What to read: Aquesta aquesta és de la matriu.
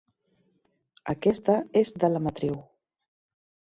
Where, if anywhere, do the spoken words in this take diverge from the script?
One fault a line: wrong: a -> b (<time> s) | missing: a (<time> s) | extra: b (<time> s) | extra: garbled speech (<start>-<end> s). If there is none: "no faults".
missing: aquesta (1.6 s)